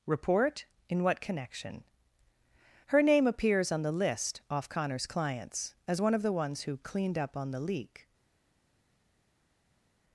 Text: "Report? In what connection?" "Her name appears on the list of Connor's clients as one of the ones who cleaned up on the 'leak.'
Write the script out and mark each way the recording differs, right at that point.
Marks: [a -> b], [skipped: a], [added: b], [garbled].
"Report? In what connection?" "Her name appears on the list [of -> off] Connor's clients as one of the ones who cleaned up on the 'leak.'